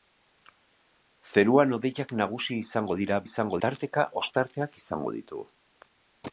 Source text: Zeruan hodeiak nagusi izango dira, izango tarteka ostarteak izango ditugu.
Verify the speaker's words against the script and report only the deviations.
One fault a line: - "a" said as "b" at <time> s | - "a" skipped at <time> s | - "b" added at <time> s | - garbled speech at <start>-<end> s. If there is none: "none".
none